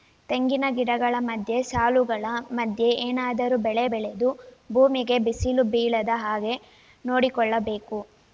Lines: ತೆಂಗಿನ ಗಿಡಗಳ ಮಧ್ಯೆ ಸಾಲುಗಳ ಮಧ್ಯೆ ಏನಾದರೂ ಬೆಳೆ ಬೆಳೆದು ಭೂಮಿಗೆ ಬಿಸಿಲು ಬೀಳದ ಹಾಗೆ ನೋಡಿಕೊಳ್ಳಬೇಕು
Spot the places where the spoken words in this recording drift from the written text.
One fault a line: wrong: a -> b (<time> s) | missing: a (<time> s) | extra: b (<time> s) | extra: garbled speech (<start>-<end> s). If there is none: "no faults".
no faults